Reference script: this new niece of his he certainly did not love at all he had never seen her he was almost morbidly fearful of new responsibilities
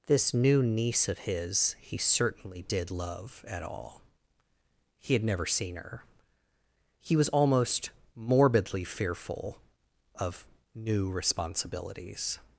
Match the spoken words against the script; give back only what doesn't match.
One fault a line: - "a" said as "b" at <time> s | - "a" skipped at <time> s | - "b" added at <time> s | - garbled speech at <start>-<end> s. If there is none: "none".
- "not" skipped at 2.9 s